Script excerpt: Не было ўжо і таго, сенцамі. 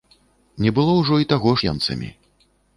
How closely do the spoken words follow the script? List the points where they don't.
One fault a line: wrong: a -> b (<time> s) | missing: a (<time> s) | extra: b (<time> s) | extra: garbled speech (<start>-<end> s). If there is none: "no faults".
no faults